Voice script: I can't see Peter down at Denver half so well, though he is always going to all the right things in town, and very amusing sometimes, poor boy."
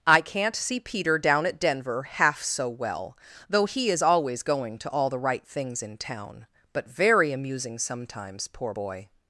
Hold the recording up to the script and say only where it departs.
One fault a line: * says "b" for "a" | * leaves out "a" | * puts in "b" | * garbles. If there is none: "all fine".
* says "but" for "and"